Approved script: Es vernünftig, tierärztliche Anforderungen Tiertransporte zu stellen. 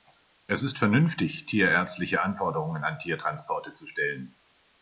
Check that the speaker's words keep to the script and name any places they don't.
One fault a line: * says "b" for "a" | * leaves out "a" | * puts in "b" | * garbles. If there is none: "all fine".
* puts in "ist"
* puts in "an"